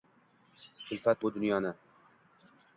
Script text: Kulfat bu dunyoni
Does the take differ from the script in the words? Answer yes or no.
no